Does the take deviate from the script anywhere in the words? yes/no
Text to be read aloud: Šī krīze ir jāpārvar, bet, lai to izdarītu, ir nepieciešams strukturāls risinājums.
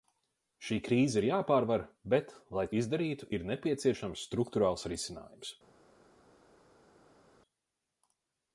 yes